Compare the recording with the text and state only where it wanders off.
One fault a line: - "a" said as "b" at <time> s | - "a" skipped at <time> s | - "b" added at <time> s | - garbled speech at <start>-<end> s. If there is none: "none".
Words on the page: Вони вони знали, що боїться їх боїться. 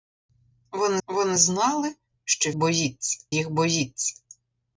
none